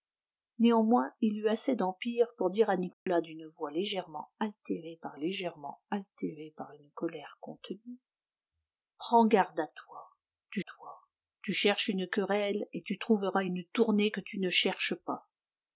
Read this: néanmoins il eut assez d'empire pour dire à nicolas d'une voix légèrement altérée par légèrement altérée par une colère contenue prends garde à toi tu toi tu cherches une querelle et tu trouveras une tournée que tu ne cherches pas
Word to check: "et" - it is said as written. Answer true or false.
true